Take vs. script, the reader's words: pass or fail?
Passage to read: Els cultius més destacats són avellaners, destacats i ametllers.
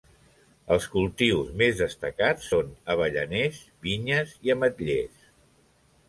fail